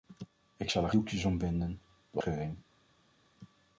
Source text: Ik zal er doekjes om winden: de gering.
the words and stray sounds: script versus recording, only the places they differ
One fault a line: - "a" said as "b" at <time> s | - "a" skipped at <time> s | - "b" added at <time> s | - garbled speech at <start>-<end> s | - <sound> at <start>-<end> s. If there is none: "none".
none